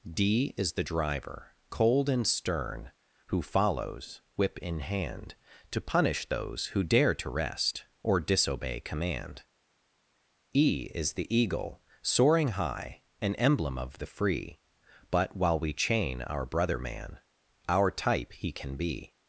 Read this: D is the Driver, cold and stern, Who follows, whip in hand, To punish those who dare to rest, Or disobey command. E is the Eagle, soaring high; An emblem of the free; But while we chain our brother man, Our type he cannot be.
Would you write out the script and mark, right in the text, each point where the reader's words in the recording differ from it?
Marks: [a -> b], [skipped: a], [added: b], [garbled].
D is the Driver, cold and stern, Who follows, whip in hand, To punish those who dare to rest, Or disobey command. E is the Eagle, soaring high; An emblem of the free; But while we chain our brother man, Our type he [cannot -> can] be.